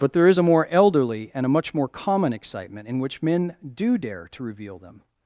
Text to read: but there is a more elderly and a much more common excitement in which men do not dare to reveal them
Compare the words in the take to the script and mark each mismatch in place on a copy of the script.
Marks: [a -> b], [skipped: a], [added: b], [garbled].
but there is a more elderly and a much more common excitement in which men do [skipped: not] dare to reveal them